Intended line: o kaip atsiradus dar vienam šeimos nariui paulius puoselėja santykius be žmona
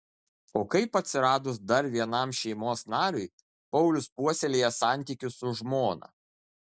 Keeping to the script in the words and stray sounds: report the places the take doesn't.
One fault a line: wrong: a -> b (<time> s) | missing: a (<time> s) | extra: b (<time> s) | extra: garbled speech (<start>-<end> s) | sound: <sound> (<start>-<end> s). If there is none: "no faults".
wrong: be -> su (5.4 s)